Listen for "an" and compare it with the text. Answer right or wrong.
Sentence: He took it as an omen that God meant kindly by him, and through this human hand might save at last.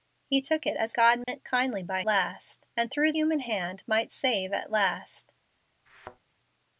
wrong